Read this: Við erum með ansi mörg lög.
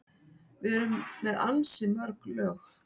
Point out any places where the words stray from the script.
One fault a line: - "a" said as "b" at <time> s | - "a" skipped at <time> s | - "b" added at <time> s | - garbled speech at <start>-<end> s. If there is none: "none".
none